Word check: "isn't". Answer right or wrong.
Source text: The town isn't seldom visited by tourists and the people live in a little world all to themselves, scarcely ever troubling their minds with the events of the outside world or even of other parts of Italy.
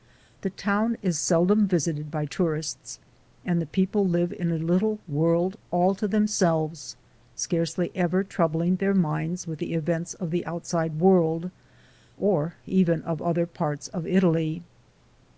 wrong